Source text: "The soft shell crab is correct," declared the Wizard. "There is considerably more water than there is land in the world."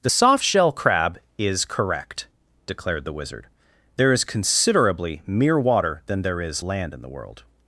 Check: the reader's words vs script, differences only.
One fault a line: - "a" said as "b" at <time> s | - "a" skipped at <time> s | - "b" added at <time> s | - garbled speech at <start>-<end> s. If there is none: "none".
- "more" said as "mere" at 5.3 s